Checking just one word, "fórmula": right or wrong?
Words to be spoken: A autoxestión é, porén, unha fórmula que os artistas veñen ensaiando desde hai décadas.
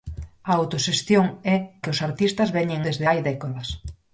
wrong